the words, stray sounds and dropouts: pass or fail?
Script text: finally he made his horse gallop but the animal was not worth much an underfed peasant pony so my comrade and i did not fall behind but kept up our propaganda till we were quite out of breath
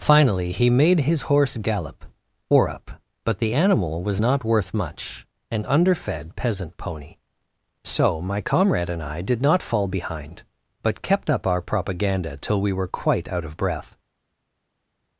fail